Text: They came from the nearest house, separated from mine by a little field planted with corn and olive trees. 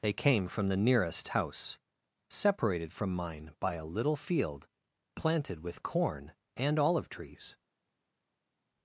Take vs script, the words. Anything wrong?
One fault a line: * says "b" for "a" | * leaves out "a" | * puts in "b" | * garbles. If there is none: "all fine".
all fine